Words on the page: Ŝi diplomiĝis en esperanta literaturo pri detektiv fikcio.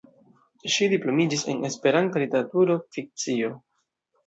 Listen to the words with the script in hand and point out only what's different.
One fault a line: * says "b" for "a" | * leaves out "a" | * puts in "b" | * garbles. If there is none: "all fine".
* leaves out "pri detektiv"